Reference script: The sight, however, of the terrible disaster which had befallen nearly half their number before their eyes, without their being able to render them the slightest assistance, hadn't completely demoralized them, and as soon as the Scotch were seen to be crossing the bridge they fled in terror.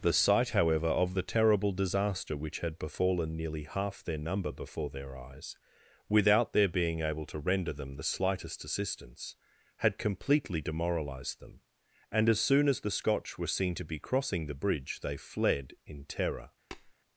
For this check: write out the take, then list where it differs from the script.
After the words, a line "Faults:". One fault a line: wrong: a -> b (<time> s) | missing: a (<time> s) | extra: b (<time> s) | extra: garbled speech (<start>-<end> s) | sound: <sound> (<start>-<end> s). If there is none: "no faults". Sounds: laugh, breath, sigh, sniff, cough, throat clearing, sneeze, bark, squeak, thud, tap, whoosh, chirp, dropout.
The sight, however, of the terrible disaster which had befallen nearly half their number before their eyes, without their being able to render them the slightest assistance, had completely demoralized them, and as soon as the Scotch were seen to be crossing the bridge they fled in terror.
Faults:
wrong: hadn't -> had (9.8 s)
sound: tap (16.7-16.9 s)